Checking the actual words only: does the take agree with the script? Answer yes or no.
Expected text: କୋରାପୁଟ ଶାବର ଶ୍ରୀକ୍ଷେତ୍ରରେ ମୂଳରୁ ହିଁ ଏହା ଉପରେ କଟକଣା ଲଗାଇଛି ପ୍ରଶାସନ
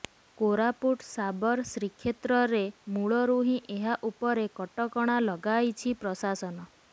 yes